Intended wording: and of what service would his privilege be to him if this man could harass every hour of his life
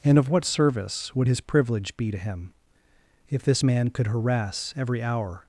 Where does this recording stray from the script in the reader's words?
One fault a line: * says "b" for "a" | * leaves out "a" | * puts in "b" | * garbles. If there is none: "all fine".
* leaves out "of his life"